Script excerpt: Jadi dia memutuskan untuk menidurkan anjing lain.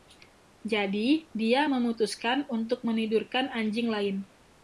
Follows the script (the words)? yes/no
yes